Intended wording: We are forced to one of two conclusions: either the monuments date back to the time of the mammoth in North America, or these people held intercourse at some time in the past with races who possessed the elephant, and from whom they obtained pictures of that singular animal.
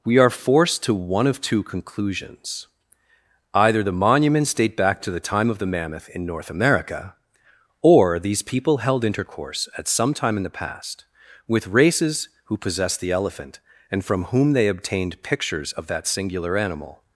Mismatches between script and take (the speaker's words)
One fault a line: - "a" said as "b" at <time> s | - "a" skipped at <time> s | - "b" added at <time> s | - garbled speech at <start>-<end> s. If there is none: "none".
none